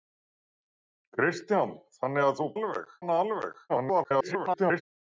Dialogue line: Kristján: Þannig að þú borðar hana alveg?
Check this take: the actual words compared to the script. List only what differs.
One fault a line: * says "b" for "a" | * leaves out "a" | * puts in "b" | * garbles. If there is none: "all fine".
* says "alveg" for "borðar"
* garbles